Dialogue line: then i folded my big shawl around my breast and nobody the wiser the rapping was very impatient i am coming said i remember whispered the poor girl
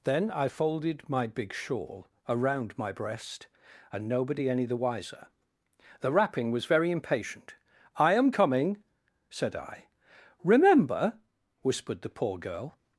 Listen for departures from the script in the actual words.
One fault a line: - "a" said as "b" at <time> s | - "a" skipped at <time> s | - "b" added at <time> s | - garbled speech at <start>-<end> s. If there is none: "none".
- "any" added at 4.5 s